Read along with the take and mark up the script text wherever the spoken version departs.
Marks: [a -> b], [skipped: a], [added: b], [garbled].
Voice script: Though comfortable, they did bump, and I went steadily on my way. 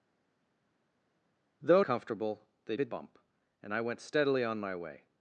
Though comfortable, they did bump, and I went steadily on my way.